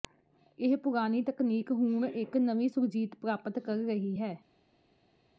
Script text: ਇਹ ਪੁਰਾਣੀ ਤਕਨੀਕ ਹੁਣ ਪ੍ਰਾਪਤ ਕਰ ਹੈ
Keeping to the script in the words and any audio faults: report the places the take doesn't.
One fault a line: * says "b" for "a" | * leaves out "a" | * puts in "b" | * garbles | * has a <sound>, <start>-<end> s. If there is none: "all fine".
* puts in "ਇੱਕ ਨਵੀਂ ਸੁਰਜੀਤ"
* puts in "ਰਹੀ"